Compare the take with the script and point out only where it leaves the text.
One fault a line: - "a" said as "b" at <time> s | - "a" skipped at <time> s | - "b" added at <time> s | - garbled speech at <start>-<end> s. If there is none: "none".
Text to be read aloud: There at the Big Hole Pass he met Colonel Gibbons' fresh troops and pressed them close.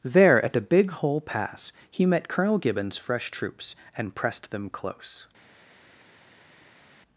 none